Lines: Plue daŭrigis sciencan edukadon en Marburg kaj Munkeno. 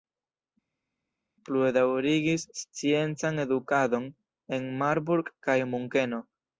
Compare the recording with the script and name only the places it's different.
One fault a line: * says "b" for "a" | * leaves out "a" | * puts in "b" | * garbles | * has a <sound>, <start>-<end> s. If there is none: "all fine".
all fine